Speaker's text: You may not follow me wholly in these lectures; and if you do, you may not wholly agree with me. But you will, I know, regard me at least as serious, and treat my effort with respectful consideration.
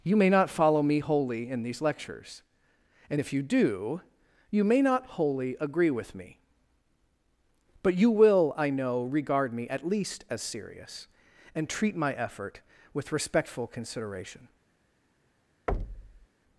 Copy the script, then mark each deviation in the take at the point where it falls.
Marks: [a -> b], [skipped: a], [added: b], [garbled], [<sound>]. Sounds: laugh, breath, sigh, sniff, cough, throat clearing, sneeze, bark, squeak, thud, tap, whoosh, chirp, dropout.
You may not follow me wholly in these lectures; and if you do, you may not wholly agree with me. But you will, I know, regard me at least as serious, and treat my effort with respectful consideration. [thud]